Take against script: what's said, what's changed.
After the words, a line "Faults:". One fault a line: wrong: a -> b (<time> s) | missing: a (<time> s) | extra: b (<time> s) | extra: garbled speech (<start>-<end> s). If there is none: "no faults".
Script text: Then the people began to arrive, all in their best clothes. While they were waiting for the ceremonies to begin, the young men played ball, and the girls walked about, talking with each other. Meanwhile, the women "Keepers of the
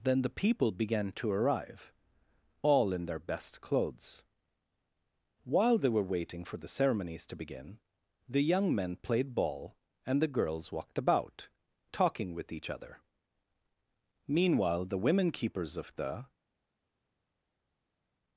Then the people began to arrive, all in their best clothes. While they were waiting for the ceremonies to begin, the young men played ball, and the girls walked about, talking with each other. Meanwhile, the women "Keepers of the
Faults:
no faults